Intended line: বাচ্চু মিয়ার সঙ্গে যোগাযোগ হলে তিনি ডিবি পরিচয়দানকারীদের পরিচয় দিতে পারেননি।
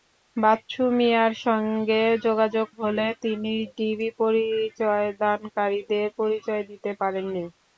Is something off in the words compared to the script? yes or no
no